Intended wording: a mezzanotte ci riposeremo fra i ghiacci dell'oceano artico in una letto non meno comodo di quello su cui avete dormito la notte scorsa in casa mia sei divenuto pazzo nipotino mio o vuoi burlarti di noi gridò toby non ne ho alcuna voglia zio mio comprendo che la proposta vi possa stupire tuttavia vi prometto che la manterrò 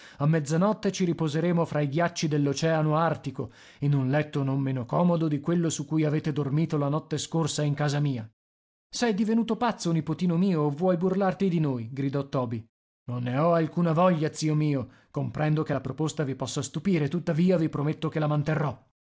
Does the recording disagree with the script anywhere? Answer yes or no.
yes